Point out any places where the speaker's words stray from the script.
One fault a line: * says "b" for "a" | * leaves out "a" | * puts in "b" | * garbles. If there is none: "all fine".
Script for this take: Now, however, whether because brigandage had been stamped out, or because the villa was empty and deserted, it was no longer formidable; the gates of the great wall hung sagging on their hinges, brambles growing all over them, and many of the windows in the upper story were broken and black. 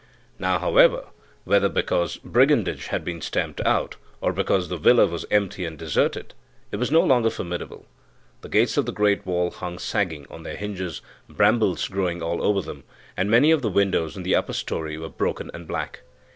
all fine